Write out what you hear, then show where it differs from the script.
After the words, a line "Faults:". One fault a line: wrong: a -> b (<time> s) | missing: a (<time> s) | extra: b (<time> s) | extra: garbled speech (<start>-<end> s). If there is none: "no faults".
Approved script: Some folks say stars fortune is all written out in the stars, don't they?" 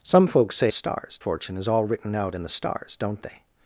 Some folks say stars fortune is all written out in the stars, don't they?"
Faults:
no faults